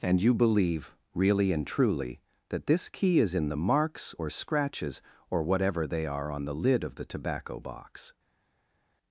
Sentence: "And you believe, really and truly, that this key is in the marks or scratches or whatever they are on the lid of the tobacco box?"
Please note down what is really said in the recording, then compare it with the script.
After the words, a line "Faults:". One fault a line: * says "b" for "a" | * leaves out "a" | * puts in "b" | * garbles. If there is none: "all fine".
"And you believe, really and truly, that this key is in the marks or scratches or whatever they are on the lid of the tobacco box?"
Faults:
all fine